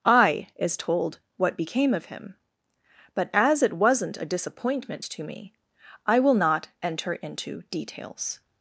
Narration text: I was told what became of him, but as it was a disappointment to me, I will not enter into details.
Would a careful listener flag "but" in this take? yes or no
no